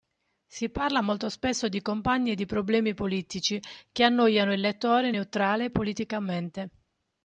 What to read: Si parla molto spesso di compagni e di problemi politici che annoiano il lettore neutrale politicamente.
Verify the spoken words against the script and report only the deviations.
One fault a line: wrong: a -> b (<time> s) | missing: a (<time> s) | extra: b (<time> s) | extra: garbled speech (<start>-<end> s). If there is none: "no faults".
no faults